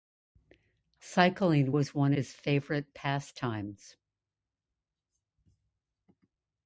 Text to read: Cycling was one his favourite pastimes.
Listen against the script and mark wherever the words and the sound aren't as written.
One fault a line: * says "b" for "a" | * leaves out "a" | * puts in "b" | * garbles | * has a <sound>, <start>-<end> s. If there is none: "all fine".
all fine